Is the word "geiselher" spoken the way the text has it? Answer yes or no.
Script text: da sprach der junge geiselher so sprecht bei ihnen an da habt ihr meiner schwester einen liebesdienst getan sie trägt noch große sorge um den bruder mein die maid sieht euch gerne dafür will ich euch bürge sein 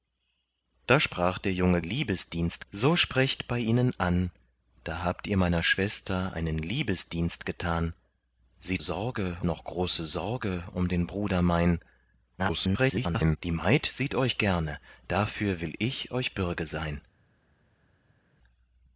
no